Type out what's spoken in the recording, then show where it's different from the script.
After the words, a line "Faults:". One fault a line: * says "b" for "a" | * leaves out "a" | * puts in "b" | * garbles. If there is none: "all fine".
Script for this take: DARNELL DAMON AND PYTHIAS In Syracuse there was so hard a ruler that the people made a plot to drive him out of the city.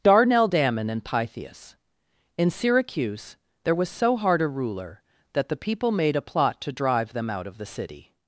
DARNELL DAMON AND PYTHIAS In Syracuse there was so hard a ruler that the people made a plot to drive them out of the city.
Faults:
* says "them" for "him"